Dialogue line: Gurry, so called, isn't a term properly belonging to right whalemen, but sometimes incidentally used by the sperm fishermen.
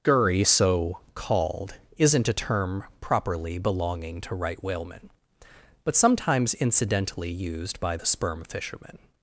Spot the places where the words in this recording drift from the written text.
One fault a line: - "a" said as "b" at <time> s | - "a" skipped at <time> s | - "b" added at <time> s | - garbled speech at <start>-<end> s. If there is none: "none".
none